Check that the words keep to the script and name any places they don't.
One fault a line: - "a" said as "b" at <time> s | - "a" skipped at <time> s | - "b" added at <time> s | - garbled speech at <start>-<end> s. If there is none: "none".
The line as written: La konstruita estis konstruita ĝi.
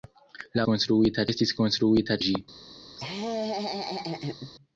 none